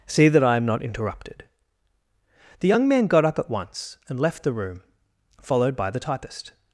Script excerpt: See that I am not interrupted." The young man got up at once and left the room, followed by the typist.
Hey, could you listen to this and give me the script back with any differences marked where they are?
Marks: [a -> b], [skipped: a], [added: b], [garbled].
See that I am not interrupted." The young man got up at once and left the room, followed by the typist.